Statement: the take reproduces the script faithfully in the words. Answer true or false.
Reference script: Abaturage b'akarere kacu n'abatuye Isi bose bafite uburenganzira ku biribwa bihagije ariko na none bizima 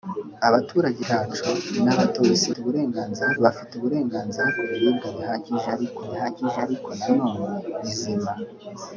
false